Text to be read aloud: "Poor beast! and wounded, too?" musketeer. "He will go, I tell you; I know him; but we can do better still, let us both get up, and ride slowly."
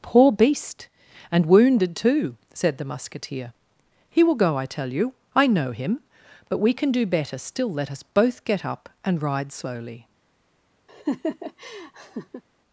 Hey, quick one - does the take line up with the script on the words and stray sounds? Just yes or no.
no